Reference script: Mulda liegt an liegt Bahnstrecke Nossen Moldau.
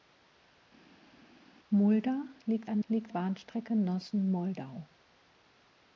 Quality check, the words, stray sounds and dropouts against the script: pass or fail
pass